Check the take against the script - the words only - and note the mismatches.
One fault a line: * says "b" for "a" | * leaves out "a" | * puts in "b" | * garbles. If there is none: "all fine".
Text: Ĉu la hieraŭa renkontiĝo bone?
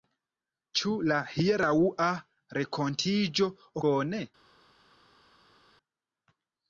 all fine